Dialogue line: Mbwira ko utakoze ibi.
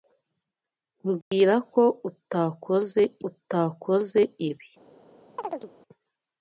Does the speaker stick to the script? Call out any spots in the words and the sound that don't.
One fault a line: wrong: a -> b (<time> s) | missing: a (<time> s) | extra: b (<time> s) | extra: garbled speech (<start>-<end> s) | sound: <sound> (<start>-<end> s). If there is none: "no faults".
sound: dropout (1.2-1.3 s)
extra: utakoze (3.3 s)
sound: chirp (5.4-5.7 s)